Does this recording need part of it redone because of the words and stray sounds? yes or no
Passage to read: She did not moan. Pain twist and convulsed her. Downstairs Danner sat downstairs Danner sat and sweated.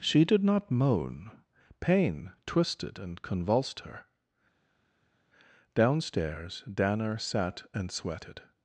yes